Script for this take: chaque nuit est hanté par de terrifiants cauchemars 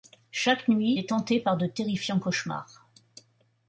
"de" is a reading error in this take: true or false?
false